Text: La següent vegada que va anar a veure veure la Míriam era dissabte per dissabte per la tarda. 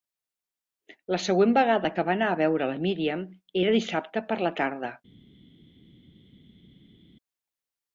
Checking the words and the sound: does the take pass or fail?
fail